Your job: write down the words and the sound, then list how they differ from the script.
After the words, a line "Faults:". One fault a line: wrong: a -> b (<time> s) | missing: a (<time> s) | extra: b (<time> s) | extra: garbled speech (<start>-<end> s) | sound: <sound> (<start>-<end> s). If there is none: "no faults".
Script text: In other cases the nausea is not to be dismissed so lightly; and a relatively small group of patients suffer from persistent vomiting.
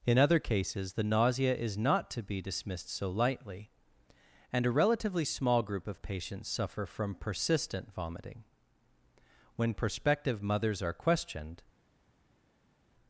In other cases the nausea is not to be dismissed so lightly; and a relatively small group of patients suffer from persistent vomiting. When prospective mothers are questioned
Faults:
extra: When prospective mothers are questioned (9.6 s)